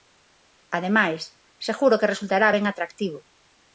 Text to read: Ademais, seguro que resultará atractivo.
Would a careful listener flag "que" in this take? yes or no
no